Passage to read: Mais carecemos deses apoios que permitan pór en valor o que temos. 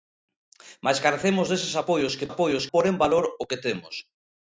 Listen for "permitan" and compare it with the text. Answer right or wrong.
wrong